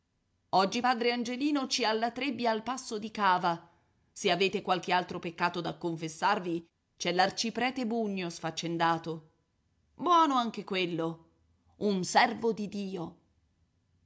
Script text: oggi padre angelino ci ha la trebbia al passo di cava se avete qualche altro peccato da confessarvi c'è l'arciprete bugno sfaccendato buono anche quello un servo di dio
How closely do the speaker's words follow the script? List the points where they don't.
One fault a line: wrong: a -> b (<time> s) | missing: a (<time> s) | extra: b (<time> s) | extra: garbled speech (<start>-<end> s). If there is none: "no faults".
no faults